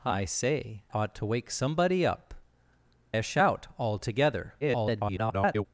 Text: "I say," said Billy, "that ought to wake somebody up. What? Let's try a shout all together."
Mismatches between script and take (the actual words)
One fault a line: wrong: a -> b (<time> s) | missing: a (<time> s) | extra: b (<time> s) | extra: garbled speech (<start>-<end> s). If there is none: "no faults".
missing: said Billy that (0.8 s)
missing: What Let's try (2.3 s)
extra: garbled speech (4.6-5.7 s)